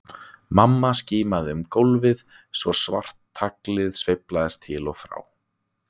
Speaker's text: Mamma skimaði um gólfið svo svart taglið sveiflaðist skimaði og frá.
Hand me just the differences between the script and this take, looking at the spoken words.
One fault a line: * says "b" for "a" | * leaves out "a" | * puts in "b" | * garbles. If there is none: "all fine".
* says "til" for "skimaði"